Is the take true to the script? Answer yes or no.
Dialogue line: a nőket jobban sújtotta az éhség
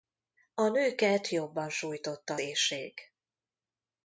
no